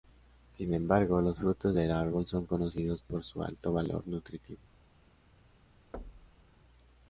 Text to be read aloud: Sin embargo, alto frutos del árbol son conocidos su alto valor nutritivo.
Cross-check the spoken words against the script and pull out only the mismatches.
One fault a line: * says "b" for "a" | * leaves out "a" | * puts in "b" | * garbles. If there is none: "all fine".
* says "los" for "alto"
* puts in "por"